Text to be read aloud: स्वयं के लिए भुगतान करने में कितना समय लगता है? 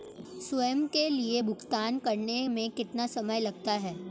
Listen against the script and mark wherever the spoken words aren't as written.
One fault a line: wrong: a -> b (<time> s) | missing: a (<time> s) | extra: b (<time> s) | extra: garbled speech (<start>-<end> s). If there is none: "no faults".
no faults